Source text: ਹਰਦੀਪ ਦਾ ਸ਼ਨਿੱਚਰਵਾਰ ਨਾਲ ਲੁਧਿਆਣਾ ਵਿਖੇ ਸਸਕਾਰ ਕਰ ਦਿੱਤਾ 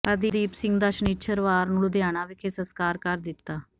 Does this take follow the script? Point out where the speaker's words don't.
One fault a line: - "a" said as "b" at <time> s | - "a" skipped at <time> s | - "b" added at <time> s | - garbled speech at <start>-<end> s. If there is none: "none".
- "ਸਿੰਘ" added at 0.5 s
- "ਨਾਲ" said as "ਨੂੰ" at 1.7 s